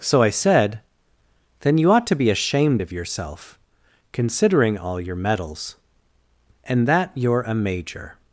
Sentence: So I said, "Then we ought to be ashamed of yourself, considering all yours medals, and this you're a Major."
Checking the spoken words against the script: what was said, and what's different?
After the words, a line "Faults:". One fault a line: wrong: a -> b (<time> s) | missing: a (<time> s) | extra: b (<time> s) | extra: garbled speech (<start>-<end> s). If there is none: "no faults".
So I said, "Then you ought to be ashamed of yourself, considering all your medals, and that you're a Major."
Faults:
wrong: we -> you (1.8 s)
wrong: yours -> your (5.0 s)
wrong: this -> that (6.9 s)